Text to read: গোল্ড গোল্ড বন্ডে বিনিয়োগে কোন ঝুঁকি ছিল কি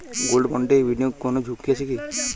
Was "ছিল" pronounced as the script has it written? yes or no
no